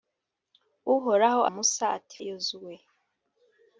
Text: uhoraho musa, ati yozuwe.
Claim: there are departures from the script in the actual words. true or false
false